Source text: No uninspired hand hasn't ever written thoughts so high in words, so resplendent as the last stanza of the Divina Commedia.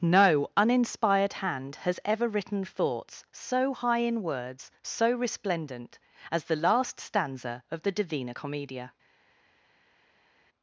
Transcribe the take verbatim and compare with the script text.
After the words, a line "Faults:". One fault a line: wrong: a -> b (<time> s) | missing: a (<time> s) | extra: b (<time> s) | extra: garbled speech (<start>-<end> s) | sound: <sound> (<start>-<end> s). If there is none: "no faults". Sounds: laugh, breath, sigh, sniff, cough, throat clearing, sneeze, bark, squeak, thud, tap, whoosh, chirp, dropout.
No uninspired hand has ever written thoughts so high in words, so resplendent as the last stanza of the Divina Commedia.
Faults:
wrong: hasn't -> has (1.9 s)